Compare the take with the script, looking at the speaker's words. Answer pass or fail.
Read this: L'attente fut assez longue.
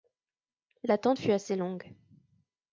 pass